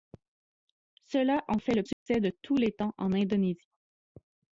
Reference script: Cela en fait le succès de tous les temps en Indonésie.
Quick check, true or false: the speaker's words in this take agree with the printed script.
true